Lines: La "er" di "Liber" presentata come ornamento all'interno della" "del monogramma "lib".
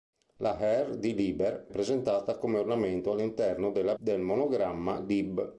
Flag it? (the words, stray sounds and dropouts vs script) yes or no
no